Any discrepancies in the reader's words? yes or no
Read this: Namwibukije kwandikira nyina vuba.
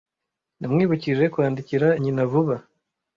no